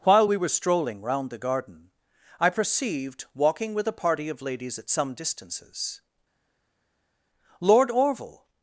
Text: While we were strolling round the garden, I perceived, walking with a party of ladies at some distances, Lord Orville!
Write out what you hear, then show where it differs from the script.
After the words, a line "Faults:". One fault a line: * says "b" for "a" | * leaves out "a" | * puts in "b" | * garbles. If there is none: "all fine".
While we were strolling round the garden, I perceived, walking with a party of ladies at some distances, Lord Orville!
Faults:
all fine